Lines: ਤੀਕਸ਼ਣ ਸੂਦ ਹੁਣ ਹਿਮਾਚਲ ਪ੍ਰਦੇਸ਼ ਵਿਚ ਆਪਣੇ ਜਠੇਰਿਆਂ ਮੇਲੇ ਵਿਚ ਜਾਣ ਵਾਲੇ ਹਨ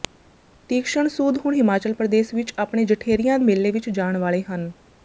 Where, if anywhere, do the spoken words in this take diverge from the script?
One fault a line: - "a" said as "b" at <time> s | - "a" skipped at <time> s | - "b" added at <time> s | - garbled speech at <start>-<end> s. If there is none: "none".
none